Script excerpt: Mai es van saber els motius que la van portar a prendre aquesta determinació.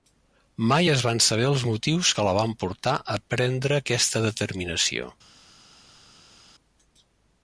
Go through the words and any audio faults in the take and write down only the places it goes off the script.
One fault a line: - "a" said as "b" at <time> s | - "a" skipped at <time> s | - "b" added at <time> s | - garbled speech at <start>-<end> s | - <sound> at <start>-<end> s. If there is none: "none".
none